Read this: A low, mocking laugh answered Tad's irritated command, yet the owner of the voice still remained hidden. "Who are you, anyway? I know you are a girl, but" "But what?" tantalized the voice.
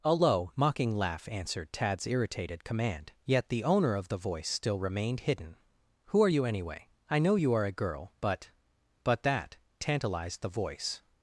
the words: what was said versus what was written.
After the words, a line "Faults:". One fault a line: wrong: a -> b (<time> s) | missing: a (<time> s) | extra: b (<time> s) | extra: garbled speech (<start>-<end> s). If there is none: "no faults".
A low, mocking laugh answered Tad's irritated command, yet the owner of the voice still remained hidden. "Who are you, anyway? I know you are a girl, but" "But that?" tantalized the voice.
Faults:
wrong: what -> that (9.2 s)